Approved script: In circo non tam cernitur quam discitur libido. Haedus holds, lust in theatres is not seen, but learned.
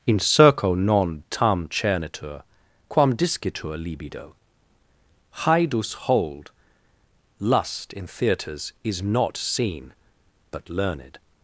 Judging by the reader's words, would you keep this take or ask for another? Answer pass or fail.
fail